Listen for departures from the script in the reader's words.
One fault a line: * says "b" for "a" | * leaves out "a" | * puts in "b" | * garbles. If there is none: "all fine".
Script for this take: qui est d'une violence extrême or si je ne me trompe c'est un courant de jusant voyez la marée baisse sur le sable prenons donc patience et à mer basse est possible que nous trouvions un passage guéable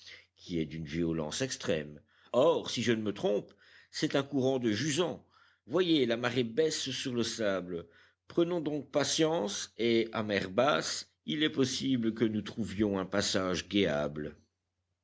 * puts in "il"